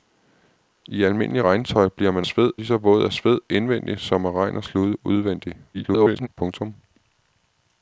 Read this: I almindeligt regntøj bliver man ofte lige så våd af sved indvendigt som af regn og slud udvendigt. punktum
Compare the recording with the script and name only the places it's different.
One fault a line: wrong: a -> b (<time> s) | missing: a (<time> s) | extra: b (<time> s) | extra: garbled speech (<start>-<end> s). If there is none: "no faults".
wrong: ofte -> sved (2.2 s)
extra: garbled speech (5.7-6.3 s)